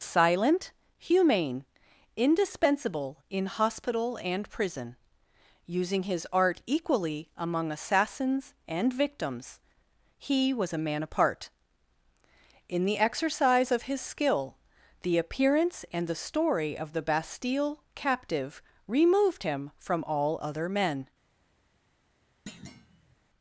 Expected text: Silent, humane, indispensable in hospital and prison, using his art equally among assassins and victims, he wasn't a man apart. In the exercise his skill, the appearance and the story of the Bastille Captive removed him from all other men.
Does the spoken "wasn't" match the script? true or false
false